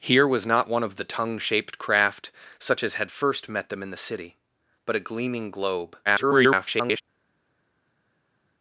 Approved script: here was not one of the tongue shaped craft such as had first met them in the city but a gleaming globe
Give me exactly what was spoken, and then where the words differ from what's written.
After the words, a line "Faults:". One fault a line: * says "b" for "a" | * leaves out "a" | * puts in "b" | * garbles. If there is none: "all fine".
here was not one of the tongue shaped craft such as had first met them in the city but a gleaming globe [garbled]
Faults:
* garbles